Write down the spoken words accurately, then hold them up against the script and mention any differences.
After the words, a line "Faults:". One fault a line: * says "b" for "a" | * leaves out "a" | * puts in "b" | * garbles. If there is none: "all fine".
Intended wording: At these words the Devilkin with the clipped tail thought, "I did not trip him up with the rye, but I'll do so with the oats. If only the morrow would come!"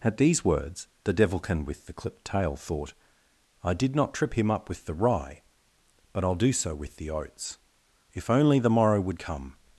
At these words the Devilkin with the clipped tail thought, "I did not trip him up with the rye, but I'll do so with the oats. If only the morrow would come!"
Faults:
all fine